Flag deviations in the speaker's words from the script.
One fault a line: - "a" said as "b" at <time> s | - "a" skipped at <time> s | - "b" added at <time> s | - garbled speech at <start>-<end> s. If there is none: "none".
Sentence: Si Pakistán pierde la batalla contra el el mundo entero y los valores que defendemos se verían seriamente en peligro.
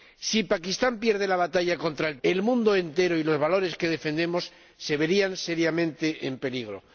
none